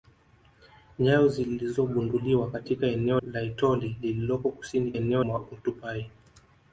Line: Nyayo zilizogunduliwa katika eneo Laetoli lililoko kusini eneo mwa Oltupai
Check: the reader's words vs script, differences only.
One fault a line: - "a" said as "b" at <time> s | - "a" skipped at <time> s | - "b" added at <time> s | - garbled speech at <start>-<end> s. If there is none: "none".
none